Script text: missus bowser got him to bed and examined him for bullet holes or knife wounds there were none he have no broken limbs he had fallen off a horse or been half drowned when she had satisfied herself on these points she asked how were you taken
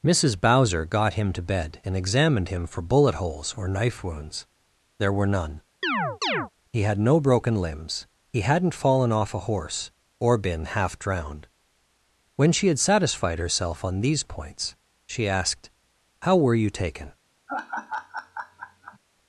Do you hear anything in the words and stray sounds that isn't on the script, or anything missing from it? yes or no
yes